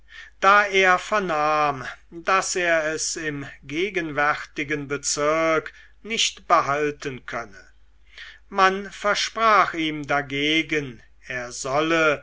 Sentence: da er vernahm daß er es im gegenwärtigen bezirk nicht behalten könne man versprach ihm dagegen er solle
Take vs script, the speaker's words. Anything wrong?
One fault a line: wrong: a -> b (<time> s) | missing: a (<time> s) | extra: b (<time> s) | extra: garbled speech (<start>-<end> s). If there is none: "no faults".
no faults